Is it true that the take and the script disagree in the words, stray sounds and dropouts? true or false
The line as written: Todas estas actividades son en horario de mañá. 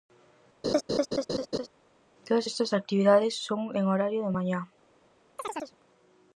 true